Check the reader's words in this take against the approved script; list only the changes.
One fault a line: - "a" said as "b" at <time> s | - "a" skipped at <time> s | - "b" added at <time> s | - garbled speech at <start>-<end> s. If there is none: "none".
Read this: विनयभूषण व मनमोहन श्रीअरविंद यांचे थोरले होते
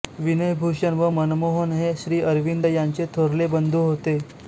- "हे" added at 1.7 s
- "बंधू" added at 3.5 s